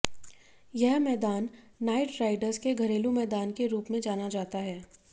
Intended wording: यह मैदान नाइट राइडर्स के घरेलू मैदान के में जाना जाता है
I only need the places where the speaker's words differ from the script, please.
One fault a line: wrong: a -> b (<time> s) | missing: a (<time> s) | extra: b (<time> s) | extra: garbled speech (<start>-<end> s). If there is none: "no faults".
extra: रूप (3.7 s)